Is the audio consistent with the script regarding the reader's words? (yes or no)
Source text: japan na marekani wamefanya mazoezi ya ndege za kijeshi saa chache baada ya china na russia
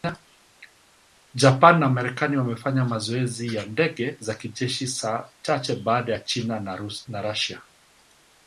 yes